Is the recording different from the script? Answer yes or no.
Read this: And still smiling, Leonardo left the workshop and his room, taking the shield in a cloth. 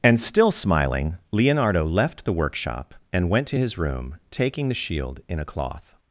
yes